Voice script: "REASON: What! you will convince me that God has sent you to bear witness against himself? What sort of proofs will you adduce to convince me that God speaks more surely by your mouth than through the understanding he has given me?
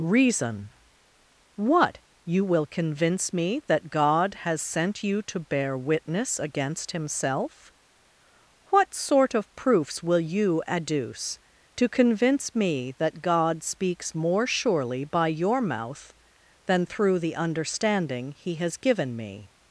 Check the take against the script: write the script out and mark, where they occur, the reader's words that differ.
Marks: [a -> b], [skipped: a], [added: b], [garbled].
"REASON: What! you will convince me that God has sent you to bear witness against himself? What sort of proofs will you adduce to convince me that God speaks more surely by your mouth than through the understanding he has given me?